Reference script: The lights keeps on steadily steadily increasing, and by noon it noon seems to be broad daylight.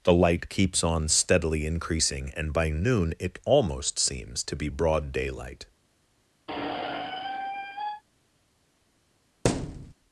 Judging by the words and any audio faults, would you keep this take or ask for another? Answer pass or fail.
fail